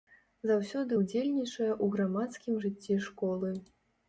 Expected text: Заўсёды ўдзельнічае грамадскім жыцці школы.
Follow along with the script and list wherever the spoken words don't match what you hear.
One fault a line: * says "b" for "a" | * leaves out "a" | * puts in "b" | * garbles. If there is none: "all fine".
* puts in "ў"